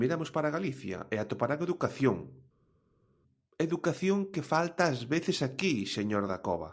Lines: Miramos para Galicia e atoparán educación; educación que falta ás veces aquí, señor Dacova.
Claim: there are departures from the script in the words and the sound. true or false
false